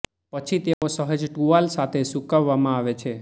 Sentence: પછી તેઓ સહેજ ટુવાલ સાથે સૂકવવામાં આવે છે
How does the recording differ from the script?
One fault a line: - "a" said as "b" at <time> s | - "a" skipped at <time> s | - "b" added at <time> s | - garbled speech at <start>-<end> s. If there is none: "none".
none